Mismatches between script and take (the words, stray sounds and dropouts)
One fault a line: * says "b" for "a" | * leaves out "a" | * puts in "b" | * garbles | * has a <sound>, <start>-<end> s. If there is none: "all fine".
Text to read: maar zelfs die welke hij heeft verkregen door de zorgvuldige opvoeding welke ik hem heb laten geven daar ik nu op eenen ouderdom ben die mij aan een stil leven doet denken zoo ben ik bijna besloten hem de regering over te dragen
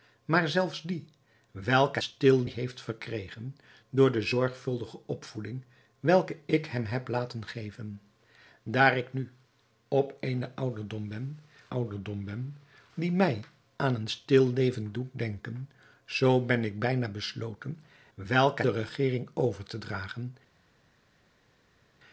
* says "stil" for "hij"
* puts in "ouderdom ben"
* says "welke" for "hem"